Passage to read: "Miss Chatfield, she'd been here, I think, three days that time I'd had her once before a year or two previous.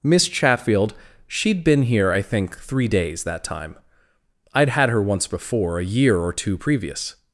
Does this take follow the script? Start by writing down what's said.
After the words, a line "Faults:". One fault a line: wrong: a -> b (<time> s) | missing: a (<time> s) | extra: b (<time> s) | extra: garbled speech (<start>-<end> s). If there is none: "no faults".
"Miss Chatfield, she'd been here, I think, three days that time I'd had her once before a year or two previous.
Faults:
no faults